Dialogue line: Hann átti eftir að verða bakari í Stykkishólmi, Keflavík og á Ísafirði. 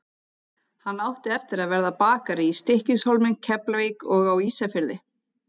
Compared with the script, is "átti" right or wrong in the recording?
right